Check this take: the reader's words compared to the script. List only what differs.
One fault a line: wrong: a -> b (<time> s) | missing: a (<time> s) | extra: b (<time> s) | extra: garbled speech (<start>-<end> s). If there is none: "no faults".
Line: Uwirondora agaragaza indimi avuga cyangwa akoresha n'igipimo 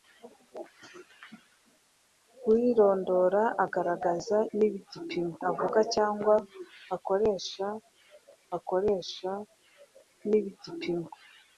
wrong: indimi -> n'igipimo (4.6 s)
extra: akoresha (8.6 s)